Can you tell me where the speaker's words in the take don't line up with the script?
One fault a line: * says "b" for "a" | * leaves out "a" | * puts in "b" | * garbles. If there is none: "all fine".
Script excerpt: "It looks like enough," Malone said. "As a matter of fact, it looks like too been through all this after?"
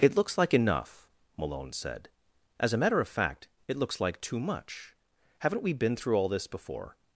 * puts in "much Haven't we"
* says "before" for "after"